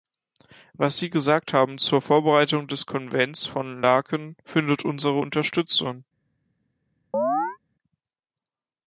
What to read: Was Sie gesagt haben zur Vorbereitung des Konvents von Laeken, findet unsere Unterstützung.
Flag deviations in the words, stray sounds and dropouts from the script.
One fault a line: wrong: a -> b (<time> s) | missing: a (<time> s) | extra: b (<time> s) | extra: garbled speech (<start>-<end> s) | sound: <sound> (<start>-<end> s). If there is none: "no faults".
sound: chirp (7.1-7.6 s)